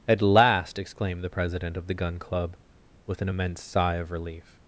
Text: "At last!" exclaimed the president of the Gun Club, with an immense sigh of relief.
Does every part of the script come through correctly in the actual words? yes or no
yes